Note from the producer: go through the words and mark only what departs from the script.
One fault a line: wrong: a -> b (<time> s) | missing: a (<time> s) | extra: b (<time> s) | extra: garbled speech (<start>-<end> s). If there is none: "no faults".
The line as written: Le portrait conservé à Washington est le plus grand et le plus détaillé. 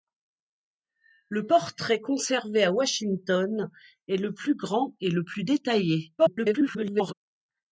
extra: garbled speech (6.2-7.1 s)